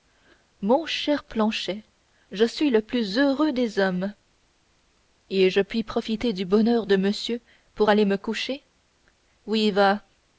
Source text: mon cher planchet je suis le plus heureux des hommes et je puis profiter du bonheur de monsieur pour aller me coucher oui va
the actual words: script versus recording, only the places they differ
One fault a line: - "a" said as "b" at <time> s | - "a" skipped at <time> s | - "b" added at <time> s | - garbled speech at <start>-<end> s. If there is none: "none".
none